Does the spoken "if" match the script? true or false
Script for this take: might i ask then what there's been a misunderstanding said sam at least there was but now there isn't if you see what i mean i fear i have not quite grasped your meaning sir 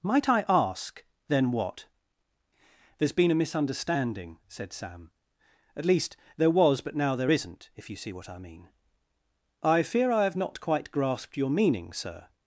true